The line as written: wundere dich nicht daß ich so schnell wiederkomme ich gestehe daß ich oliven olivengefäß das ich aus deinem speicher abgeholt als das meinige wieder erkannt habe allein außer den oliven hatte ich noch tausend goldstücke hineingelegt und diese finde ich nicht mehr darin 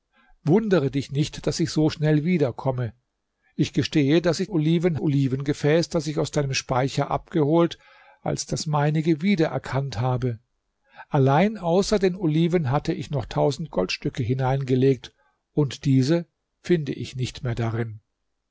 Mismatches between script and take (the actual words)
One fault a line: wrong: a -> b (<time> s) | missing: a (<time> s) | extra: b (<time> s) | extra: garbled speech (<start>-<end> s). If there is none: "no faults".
no faults